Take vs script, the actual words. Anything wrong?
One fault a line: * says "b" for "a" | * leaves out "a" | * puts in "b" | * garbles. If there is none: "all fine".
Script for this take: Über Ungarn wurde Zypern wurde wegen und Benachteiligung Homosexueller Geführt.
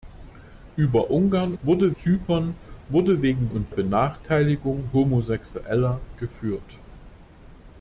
all fine